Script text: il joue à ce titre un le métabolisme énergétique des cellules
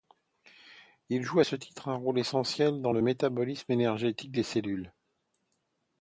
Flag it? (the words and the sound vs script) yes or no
yes